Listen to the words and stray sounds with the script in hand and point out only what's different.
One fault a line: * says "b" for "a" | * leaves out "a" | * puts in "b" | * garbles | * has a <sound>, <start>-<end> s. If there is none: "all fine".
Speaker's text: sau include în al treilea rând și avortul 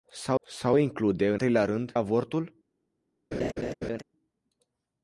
* puts in "sau"
* leaves out "al"
* leaves out "și"
* has a laugh, 3.3-4.0 s